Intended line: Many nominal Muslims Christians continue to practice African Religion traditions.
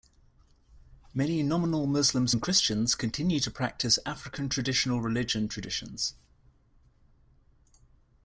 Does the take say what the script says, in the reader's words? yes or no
no